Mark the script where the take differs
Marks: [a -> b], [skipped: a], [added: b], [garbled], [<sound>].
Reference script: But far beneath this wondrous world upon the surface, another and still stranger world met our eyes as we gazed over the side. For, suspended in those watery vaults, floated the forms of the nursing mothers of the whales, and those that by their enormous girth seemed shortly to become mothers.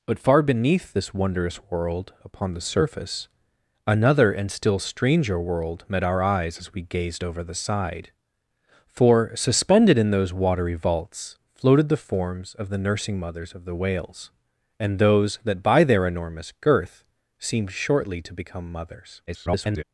But far beneath this wondrous world upon the surface, another and still stranger world met our eyes as we gazed over the side. For, suspended in those watery vaults, floated the forms of the nursing mothers of the whales, and those that by their enormous girth seemed shortly to become mothers. [garbled]